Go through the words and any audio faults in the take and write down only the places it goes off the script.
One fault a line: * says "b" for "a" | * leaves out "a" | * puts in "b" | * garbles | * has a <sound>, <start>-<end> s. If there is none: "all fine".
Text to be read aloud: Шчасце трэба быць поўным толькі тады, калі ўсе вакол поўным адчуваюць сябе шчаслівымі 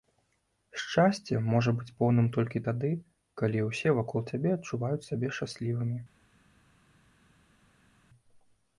* says "можа" for "трэба"
* says "цябе" for "поўным"